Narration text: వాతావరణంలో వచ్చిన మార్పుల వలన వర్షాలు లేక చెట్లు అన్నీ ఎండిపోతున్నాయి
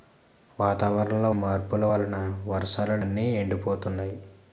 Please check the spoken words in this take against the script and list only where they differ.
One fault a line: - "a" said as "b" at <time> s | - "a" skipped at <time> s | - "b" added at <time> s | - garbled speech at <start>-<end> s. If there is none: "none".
- "వచ్చిన" skipped at 1.3 s
- "లేక చెట్లు" skipped at 3.0 s